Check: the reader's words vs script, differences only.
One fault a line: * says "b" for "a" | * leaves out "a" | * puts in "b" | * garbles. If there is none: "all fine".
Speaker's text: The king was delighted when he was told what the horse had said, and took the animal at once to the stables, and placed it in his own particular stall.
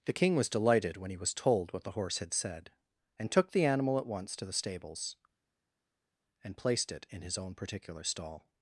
all fine